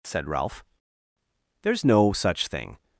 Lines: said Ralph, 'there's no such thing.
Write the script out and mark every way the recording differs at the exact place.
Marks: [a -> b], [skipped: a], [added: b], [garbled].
said Ralph, 'there's no such thing.